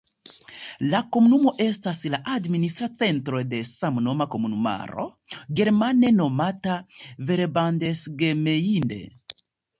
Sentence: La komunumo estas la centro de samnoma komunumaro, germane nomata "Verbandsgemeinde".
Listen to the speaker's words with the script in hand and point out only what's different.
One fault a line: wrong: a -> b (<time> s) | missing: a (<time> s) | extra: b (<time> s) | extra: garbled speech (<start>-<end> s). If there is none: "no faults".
extra: administra (2.4 s)